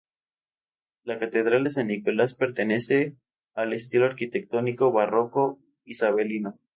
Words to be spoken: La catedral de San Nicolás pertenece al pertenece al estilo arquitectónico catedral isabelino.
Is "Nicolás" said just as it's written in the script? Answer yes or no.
yes